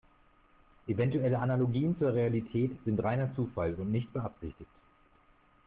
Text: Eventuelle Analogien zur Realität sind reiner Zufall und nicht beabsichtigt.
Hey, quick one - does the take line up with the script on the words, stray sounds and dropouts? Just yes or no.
yes